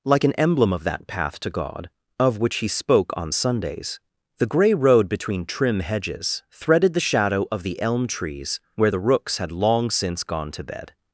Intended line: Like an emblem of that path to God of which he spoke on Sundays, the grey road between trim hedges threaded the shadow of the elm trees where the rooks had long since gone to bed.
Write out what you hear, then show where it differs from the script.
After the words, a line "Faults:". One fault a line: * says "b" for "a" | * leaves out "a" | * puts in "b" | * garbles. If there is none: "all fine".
Like an emblem of that path to God of which he spoke on Sundays, the grey road between trim hedges threaded the shadow of the elm trees where the rooks had long since gone to bed.
Faults:
all fine